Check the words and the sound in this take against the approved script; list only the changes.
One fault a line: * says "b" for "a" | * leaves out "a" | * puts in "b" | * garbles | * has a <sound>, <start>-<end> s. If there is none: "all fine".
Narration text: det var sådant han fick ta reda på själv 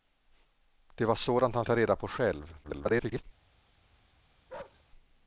* leaves out "fick"
* garbles
* has a bark, 4.5-4.8 s